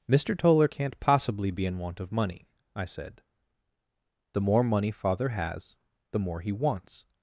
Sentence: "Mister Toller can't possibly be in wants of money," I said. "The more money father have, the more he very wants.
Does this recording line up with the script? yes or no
no